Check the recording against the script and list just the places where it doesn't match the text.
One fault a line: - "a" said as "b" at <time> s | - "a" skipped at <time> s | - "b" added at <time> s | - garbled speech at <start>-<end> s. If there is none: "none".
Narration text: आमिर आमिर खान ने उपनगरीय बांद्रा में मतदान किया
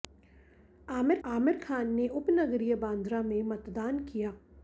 none